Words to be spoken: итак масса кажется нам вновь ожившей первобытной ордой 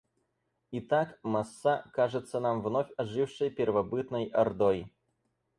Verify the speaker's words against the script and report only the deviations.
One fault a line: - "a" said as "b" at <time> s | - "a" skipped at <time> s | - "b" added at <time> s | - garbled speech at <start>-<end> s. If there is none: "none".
none